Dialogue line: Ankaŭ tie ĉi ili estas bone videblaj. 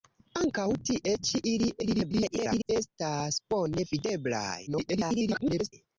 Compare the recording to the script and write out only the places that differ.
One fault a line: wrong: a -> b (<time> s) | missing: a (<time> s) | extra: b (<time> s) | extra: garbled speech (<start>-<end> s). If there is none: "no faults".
extra: garbled speech (1.8-2.7 s)
extra: garbled speech (4.7-5.7 s)